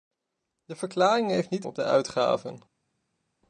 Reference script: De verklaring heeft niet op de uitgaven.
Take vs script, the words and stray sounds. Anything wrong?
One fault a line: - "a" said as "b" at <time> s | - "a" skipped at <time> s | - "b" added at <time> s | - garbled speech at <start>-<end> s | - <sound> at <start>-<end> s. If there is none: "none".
none